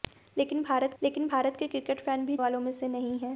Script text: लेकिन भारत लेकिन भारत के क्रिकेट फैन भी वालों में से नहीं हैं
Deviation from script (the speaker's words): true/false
false